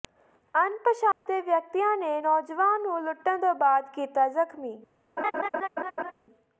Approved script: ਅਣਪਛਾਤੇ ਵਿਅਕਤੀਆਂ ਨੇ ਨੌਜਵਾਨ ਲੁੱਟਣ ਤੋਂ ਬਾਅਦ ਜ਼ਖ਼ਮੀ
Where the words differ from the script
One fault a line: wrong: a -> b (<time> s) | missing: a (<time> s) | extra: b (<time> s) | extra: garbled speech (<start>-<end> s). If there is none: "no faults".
extra: ਨੂੰ (2.8 s)
extra: ਕੀਤਾ (3.9 s)